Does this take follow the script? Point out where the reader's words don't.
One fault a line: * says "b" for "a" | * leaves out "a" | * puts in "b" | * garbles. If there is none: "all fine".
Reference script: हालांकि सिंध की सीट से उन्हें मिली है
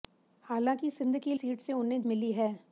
all fine